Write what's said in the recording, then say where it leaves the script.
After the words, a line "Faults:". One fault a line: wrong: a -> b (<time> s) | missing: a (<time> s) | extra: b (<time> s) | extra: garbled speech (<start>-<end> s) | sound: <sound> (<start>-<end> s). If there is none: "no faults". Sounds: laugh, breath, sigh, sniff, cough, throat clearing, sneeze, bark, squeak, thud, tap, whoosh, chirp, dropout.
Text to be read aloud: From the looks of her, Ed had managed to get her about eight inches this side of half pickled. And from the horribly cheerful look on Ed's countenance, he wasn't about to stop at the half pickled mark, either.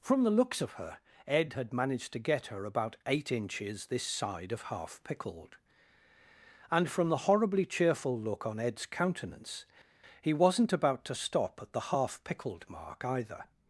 From the looks of her, Ed had managed to get her about eight inches this side of half pickled. And from the horribly cheerful look on Ed's countenance, he wasn't about to stop at the half pickled mark, either.
Faults:
no faults